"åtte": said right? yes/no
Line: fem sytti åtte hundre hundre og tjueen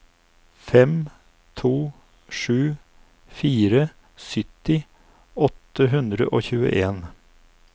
yes